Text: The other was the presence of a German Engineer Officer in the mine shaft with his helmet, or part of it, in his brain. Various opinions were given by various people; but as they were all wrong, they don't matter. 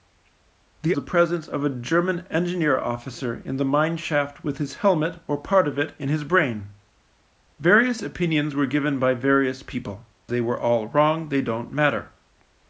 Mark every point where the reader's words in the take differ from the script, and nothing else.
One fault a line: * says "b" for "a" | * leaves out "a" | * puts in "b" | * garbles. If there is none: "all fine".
* leaves out "other was"
* leaves out "but as"